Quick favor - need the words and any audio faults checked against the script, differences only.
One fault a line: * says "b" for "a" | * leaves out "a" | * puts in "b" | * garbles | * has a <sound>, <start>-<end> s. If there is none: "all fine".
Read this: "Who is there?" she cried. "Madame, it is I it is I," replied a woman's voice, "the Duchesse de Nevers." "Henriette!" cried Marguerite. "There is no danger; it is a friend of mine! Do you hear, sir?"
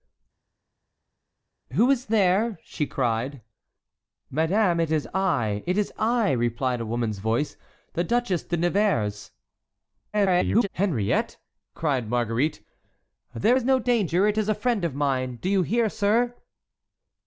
* garbles